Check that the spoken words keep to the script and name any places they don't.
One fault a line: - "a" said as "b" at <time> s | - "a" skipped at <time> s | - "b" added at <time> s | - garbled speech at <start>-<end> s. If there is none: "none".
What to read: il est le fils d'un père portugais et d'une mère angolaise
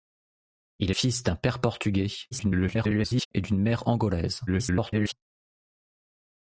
- "le" skipped at 0.9 s
- garbled speech at 2.3-3.3 s
- garbled speech at 4.5-5.1 s